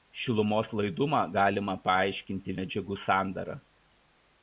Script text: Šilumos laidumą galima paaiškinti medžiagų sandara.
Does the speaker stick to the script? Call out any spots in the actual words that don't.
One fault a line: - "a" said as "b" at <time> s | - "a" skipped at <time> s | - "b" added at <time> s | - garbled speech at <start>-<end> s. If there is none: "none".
none